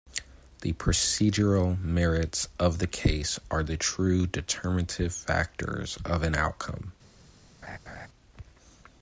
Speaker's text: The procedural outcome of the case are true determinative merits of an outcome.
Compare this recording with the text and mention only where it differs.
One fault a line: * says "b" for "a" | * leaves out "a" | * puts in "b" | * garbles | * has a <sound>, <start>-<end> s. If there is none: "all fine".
* says "merits" for "outcome"
* puts in "the"
* says "factors" for "merits"
* has a laugh, 7.6-8.1 s